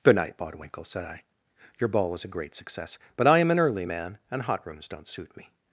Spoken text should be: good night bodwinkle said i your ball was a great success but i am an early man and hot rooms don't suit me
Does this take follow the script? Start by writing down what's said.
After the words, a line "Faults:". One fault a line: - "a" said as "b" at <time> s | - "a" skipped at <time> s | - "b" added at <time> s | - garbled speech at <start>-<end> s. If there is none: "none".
good night bodwinkle said i your ball was a great success but i am an early man and hot rooms don't suit me
Faults:
none